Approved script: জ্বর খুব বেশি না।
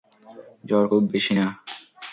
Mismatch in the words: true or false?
false